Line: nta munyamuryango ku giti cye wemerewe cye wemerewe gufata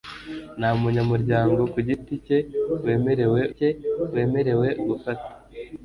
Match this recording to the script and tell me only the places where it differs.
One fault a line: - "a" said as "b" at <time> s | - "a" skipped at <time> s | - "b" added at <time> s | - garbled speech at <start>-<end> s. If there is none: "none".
none